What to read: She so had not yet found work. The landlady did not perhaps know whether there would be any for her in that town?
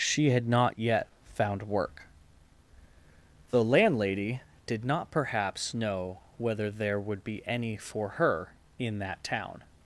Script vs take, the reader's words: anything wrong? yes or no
yes